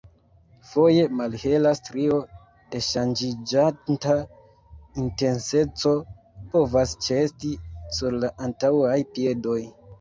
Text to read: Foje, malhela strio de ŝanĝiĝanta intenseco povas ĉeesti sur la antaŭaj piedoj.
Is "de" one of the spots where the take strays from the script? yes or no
no